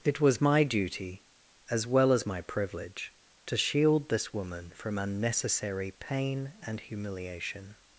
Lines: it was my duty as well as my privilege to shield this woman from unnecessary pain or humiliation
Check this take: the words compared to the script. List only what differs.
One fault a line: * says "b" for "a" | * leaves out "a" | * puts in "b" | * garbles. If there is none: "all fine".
* says "and" for "or"